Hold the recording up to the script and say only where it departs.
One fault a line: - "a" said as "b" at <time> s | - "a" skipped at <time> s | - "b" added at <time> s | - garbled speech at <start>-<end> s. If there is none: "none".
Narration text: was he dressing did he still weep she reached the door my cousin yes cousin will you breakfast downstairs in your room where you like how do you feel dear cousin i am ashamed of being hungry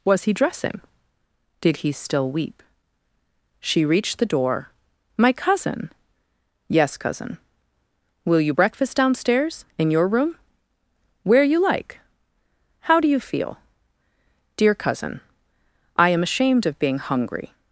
none